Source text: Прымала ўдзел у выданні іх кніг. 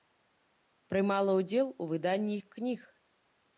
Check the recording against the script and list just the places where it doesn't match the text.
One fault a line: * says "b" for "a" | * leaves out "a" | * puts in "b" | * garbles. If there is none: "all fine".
all fine